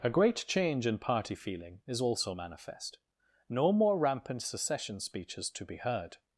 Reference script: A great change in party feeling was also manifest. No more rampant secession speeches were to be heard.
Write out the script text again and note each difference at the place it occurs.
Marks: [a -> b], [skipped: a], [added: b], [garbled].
A great change in party feeling [was -> is] also manifest. No more rampant secession speeches [skipped: were] to be heard.